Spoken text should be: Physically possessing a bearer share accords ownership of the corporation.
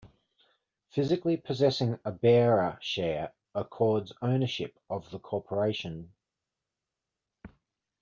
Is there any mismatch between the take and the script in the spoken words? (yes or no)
no